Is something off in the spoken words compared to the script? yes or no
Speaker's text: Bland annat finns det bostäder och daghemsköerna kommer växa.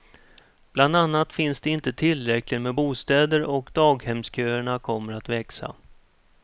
yes